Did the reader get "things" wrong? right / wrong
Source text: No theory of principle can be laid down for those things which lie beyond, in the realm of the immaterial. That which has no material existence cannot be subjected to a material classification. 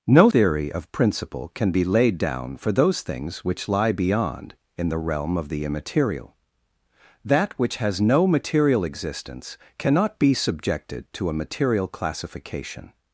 right